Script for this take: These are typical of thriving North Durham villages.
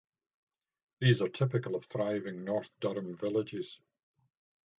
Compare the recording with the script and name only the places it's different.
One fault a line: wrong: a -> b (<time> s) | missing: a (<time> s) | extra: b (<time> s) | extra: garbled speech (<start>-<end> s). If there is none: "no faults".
no faults